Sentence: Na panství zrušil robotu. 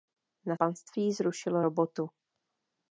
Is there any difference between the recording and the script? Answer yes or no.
no